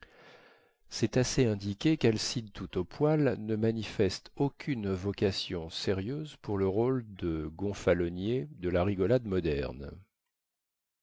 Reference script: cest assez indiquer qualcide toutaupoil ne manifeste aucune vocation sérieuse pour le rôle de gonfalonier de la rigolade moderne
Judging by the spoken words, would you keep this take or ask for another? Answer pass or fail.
pass